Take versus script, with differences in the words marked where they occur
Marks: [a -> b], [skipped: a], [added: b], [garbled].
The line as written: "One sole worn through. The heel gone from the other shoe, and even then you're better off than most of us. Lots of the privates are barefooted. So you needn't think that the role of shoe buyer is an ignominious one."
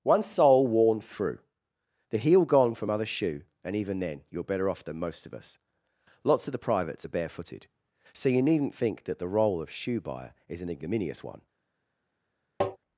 "One sole worn through. The heel gone from [skipped: the] other shoe, and even then you're better off than most of us. Lots of the privates are barefooted. So you needn't think that the role of shoe buyer is an ignominious one."